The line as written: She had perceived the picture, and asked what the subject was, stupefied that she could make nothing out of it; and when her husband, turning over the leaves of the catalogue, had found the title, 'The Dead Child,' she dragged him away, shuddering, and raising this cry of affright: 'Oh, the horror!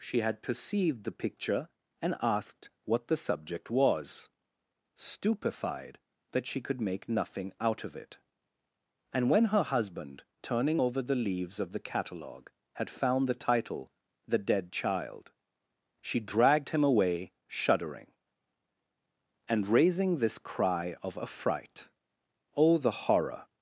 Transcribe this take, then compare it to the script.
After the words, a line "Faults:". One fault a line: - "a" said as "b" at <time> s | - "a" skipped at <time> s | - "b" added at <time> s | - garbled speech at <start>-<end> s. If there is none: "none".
She had perceived the picture, and asked what the subject was, stupefied that she could make nothing out of it; and when her husband, turning over the leaves of the catalogue, had found the title, 'The Dead Child,' she dragged him away, shuddering, and raising this cry of affright: 'Oh, the horror!
Faults:
none